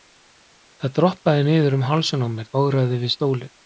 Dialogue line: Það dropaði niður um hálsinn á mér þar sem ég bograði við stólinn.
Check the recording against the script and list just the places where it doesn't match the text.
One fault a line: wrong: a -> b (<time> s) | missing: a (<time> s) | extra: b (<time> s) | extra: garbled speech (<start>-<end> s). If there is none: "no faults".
missing: þar sem ég (2.5 s)